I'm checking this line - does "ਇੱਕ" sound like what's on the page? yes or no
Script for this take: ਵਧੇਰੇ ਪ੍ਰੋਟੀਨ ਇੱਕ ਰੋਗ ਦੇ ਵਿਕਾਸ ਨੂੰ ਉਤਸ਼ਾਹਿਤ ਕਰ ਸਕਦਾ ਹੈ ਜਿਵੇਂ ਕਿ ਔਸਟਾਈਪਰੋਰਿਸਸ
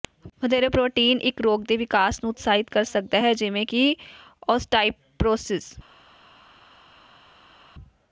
yes